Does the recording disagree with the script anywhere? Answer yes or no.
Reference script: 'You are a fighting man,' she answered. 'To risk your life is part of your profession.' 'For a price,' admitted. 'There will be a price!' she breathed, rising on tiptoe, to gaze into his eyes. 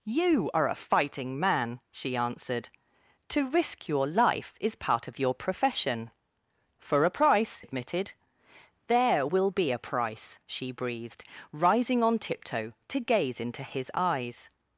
no